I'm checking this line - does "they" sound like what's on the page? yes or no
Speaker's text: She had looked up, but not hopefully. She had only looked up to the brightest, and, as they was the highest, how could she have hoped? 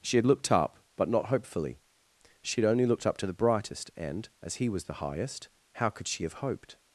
no